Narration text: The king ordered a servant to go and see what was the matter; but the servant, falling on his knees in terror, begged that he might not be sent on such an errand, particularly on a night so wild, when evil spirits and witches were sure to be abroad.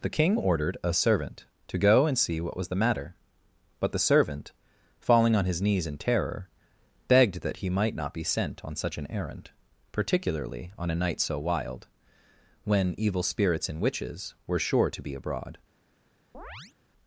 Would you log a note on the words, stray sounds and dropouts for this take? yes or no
yes